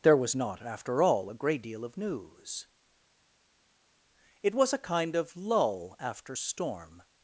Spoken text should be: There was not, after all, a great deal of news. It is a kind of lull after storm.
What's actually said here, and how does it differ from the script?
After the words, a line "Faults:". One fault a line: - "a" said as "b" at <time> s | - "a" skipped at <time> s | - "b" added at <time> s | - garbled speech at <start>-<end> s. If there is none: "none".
There was not, after all, a great deal of news. It was a kind of lull after storm.
Faults:
- "is" said as "was" at 4.5 s